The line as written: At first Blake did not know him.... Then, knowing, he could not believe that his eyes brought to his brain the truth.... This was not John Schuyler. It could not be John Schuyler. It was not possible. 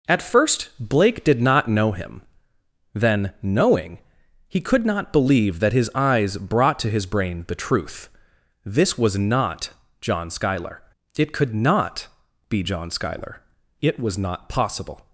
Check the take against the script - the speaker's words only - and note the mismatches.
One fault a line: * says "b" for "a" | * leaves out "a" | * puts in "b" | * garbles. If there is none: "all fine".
all fine